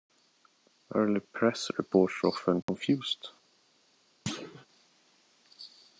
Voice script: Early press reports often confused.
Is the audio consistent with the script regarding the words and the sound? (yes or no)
no